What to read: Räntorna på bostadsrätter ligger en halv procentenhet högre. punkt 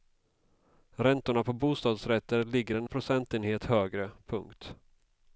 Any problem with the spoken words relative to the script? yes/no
yes